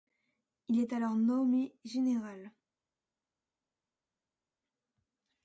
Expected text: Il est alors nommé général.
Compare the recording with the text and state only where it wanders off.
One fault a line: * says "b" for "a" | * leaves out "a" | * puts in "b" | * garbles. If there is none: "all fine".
all fine